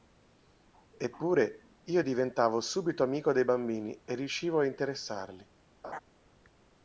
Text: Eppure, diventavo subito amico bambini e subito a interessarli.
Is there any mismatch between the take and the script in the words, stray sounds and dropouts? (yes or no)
yes